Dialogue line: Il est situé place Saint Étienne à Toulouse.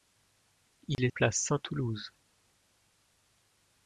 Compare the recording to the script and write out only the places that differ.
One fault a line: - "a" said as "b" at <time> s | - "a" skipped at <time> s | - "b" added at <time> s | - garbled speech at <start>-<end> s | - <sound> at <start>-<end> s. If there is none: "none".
- dropout at 0.9-1.0 s
- "situé" skipped at 1.1 s
- "Étienne à" skipped at 1.6 s